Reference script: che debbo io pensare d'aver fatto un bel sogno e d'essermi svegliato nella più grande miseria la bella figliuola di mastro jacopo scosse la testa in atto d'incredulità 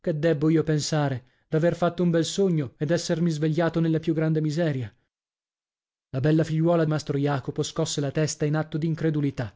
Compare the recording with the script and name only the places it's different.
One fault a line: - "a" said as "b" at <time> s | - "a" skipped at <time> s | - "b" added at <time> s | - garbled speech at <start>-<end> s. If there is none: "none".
- "di" skipped at 6.8 s